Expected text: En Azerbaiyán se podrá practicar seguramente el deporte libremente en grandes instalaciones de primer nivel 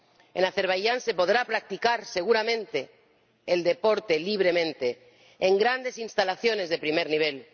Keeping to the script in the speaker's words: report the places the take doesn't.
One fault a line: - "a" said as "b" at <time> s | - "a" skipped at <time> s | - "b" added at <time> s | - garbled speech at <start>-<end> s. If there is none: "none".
none